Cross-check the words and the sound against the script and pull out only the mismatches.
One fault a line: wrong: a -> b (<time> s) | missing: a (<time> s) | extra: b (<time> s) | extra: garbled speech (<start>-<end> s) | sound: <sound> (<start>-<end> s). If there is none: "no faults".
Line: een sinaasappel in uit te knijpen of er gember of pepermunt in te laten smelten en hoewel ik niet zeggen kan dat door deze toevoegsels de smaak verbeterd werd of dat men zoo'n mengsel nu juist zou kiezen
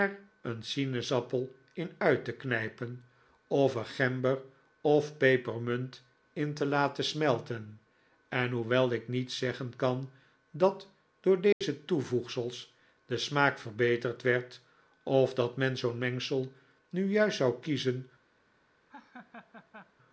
sound: dropout (11.5-11.6 s)
sound: laugh (18.9-19.9 s)